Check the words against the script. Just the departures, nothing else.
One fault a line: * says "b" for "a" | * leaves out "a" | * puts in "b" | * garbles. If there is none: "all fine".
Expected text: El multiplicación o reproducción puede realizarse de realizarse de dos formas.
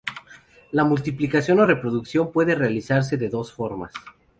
* says "La" for "El"
* leaves out "realizarse de"